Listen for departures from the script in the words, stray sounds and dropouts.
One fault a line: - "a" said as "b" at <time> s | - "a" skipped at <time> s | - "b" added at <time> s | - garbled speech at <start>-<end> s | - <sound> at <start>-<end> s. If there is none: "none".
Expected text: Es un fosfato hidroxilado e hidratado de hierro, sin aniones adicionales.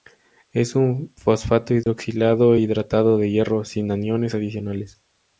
- dropout at 1.8-1.9 s